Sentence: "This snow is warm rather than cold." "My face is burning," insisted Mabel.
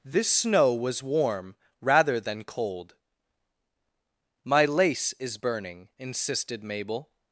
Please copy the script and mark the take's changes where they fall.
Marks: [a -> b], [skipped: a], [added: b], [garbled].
"This snow [is -> was] warm rather than cold." "My [face -> lace] is burning," insisted Mabel.